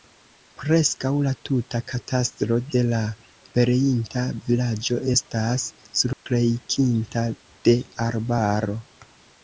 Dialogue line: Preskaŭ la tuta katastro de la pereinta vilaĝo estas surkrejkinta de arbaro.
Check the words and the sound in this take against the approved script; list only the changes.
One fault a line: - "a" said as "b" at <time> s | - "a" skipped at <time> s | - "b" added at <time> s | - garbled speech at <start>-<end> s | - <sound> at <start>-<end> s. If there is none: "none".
- dropout at 6.1-6.3 s